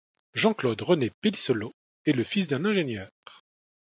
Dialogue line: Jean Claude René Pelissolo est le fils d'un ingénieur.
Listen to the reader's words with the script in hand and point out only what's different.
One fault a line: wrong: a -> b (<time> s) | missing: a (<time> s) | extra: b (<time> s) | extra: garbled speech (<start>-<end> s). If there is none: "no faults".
no faults